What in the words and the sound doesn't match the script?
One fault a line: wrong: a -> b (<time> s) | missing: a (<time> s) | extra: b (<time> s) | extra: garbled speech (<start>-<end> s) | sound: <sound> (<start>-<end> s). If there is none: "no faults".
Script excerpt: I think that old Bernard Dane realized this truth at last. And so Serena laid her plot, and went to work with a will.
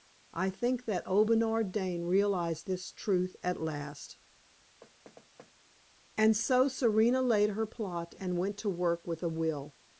sound: thud (4.8-5.5 s)